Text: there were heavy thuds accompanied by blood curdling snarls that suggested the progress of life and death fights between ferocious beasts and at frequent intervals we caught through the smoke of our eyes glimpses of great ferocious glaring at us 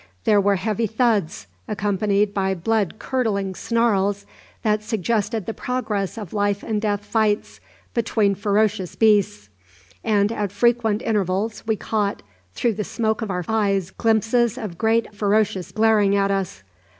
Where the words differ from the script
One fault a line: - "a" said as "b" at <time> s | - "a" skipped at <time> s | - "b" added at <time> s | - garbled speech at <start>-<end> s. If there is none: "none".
none